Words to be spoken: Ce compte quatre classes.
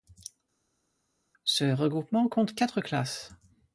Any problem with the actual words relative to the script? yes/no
yes